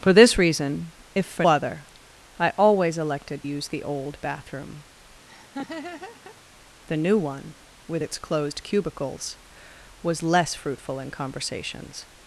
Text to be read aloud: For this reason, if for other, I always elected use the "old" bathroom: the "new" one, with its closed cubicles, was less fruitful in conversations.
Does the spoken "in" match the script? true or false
true